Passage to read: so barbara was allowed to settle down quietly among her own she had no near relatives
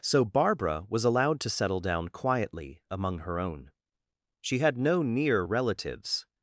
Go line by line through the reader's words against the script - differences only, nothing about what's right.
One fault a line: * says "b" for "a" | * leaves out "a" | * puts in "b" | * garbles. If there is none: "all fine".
all fine